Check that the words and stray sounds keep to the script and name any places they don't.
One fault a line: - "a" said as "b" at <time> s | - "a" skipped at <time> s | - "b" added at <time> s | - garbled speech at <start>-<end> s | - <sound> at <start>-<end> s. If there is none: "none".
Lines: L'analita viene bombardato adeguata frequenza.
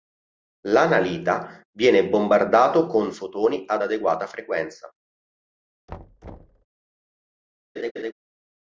- "con fotoni ad" added at 2.9 s
- thud at 5.9-6.7 s
- laugh at 7.8-8.1 s